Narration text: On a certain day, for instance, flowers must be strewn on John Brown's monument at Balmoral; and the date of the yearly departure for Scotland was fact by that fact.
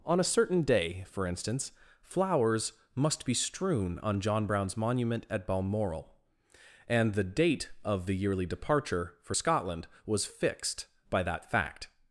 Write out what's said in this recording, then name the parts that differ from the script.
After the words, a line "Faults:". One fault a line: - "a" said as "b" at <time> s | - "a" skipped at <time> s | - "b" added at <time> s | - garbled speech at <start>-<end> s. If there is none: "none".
On a certain day, for instance, flowers must be strewn on John Brown's monument at Balmoral; and the date of the yearly departure for Scotland was fixed by that fact.
Faults:
- "fact" said as "fixed" at 10.3 s